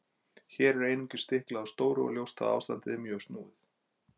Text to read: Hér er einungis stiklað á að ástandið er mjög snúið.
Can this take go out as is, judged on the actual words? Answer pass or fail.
fail